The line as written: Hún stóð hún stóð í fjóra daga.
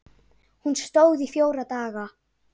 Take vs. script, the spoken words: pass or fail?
fail